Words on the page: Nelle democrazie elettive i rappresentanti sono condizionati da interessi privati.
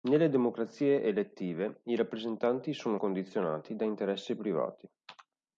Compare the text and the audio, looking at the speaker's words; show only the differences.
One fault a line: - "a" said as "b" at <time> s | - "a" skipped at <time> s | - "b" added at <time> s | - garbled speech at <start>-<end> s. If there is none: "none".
none